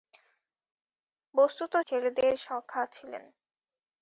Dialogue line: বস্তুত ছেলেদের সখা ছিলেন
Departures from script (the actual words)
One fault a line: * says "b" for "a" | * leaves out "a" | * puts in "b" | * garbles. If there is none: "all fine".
all fine